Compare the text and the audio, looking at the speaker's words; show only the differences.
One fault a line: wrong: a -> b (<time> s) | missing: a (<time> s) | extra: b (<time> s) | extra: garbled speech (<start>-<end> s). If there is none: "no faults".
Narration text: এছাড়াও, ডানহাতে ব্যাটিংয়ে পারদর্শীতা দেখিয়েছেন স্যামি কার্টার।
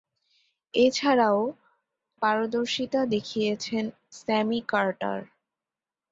missing: ডানহাতে ব্যাটিংয়ে (1.4 s)